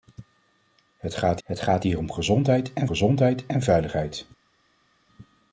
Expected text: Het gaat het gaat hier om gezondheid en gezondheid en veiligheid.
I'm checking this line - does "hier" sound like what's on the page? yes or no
yes